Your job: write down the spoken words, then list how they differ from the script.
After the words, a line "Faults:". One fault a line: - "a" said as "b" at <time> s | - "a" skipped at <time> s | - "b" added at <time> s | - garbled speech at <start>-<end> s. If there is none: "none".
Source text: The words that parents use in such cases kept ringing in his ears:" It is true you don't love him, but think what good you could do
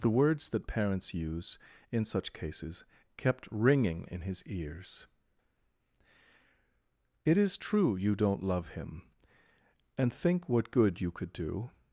The words that parents use in such cases kept ringing in his ears:" It is true you don't love him, and think what good you could do
Faults:
- "but" said as "and" at 10.0 s